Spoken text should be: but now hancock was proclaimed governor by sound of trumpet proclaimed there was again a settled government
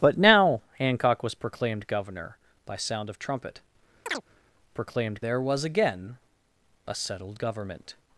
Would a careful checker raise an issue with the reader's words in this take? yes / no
no